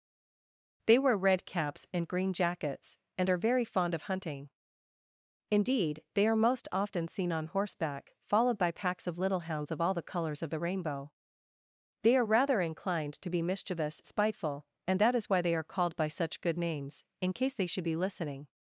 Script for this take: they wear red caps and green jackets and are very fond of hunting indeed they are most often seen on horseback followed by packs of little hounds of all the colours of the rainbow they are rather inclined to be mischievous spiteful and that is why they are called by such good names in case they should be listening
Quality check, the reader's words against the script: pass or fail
pass